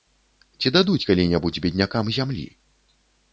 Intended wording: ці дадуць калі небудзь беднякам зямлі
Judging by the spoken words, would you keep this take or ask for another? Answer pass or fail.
pass